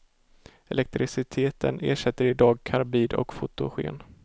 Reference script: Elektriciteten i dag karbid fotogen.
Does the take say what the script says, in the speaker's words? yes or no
no